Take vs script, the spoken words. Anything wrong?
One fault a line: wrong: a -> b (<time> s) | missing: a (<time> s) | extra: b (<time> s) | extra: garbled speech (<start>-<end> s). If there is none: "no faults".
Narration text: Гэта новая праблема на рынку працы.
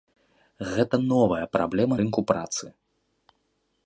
missing: на (1.9 s)